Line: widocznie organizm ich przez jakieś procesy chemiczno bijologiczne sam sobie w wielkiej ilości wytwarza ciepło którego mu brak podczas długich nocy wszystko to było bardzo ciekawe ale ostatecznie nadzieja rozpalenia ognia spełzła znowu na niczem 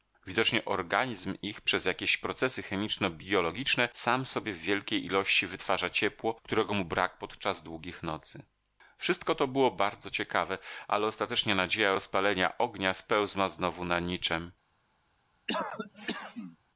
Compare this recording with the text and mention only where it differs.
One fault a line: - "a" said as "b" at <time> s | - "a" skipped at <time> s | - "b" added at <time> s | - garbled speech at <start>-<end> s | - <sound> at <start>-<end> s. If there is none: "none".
- cough at 15.5-16.6 s